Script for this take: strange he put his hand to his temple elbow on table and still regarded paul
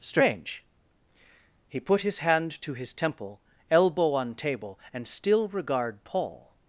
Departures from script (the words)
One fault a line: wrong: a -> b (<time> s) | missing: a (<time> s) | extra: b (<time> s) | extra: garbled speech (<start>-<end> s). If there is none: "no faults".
wrong: regarded -> regard (5.5 s)